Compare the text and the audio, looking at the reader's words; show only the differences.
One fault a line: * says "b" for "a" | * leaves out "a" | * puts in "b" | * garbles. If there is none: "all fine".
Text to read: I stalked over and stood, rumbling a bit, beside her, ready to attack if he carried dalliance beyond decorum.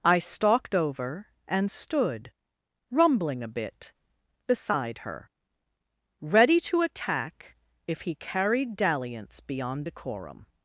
all fine